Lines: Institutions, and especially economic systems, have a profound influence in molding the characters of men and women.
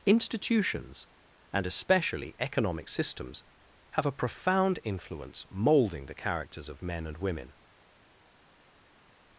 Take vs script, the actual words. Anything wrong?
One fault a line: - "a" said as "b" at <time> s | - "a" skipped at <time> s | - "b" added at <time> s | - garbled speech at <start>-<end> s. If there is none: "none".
- "in" skipped at 5.5 s